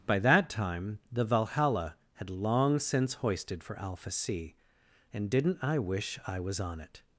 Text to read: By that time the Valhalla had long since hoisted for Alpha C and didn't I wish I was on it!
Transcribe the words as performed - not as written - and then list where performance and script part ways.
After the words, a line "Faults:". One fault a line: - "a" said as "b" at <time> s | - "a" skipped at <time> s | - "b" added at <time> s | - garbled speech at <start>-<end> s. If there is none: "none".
By that time the Valhalla had long since hoisted for Alpha C and didn't I wish I was on it!
Faults:
none